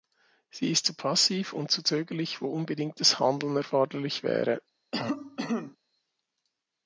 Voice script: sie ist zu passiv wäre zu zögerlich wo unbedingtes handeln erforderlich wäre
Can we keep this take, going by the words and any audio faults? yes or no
no